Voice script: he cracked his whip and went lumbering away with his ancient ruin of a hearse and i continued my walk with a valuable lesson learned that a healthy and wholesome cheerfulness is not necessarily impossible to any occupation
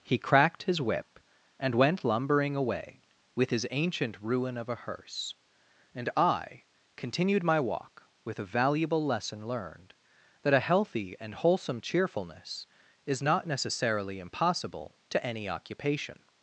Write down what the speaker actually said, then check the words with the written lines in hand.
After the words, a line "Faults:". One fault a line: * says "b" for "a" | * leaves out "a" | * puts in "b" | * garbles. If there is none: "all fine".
he cracked his whip and went lumbering away with his ancient ruin of a hearse and i continued my walk with a valuable lesson learned that a healthy and wholesome cheerfulness is not necessarily impossible to any occupation
Faults:
all fine